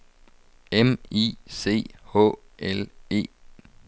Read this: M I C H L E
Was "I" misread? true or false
false